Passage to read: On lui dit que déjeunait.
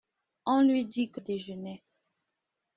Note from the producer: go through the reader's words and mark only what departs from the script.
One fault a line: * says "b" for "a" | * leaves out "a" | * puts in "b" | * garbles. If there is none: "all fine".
all fine